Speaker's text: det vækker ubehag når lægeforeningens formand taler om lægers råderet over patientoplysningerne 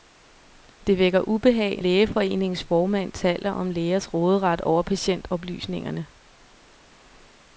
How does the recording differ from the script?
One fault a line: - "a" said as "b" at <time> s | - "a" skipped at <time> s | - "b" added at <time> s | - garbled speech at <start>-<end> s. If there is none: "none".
- "når" skipped at 1.8 s